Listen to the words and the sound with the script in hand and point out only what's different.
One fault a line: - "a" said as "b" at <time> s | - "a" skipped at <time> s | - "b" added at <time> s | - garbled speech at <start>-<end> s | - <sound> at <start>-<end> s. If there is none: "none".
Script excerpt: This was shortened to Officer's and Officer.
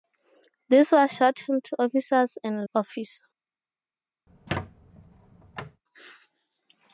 - squeak at 4.3-5.8 s